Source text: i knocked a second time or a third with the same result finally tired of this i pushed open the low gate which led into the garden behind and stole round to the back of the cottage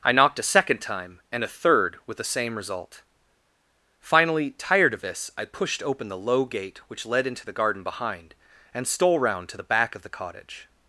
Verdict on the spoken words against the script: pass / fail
fail